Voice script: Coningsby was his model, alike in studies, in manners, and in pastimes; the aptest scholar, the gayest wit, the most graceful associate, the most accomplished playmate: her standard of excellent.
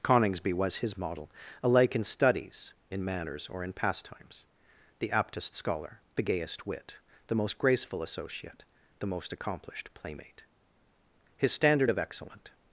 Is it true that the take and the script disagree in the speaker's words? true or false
true